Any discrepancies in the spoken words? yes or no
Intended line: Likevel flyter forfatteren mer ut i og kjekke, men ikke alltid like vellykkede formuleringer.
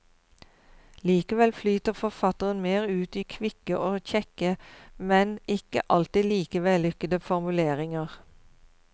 yes